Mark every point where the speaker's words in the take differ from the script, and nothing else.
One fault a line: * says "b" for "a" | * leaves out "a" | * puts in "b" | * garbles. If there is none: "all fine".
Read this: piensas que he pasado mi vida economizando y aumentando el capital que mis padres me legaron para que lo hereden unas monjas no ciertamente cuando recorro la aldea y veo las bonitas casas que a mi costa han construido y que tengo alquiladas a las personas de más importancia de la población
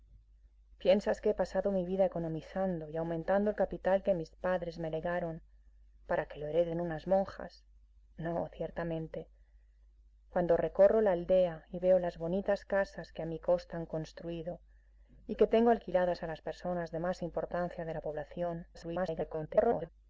* garbles